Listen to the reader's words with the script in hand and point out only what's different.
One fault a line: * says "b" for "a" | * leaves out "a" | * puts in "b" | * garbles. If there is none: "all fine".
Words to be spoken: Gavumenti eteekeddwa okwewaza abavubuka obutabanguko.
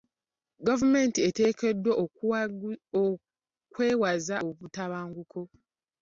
* leaves out "abavubuka"